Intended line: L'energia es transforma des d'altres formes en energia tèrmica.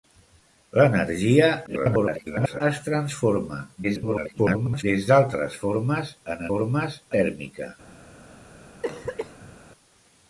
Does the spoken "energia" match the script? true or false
false